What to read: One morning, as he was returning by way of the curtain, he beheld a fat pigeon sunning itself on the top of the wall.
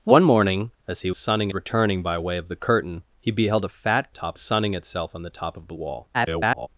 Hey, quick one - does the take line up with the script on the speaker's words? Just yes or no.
no